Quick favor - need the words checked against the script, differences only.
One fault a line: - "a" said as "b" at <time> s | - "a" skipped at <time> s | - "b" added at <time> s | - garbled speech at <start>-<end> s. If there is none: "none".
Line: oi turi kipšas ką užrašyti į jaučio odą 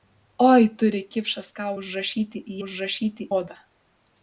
- "jaučio" said as "užrašyti" at 2.7 s